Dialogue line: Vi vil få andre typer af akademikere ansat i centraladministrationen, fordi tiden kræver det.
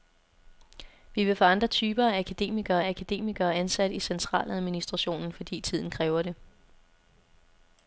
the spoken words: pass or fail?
fail